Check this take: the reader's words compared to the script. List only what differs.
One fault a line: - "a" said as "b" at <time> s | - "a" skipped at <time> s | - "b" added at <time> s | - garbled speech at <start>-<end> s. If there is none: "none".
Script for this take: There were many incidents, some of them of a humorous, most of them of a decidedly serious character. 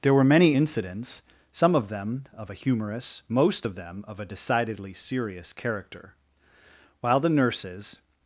- "While the nurses" added at 7.0 s